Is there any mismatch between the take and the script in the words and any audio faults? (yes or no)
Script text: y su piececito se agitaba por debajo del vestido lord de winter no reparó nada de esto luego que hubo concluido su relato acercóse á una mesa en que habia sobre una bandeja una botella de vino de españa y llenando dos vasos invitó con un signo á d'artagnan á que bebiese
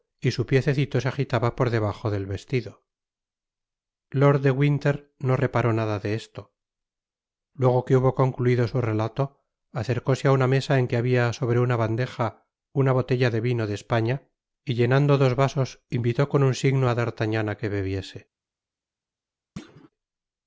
yes